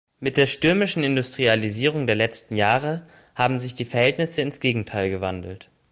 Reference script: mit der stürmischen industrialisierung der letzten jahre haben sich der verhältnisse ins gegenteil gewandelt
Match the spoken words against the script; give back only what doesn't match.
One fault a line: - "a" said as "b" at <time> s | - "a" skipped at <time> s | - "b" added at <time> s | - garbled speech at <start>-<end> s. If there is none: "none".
- "der" said as "die" at 3.8 s